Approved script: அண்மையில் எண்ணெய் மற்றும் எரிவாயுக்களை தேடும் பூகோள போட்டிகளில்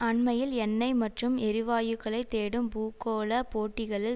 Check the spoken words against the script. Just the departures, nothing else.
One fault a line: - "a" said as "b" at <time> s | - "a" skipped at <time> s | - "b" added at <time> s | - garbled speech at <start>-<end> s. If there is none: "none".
none